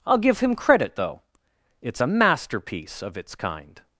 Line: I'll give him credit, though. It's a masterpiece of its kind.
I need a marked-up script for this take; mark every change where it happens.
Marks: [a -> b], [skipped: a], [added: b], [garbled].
I'll give him credit, though. It's a masterpiece of its kind.